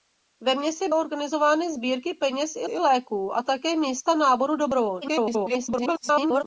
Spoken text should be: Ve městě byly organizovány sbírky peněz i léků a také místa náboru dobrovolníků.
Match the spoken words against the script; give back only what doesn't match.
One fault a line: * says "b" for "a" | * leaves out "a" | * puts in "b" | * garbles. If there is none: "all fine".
* leaves out "byly"
* puts in "i"
* garbles